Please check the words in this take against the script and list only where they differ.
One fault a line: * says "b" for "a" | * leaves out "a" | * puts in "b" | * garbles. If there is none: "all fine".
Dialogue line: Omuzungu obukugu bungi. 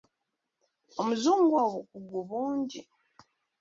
all fine